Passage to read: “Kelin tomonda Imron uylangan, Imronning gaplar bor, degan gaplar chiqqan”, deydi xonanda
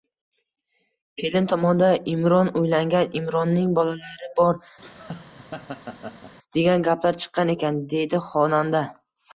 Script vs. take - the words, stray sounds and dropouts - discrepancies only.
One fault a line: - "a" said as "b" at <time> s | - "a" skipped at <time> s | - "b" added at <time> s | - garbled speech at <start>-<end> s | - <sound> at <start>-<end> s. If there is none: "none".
- "gaplar" said as "bolalari" at 3.8 s
- laugh at 4.8-6.3 s
- "ekan" added at 7.6 s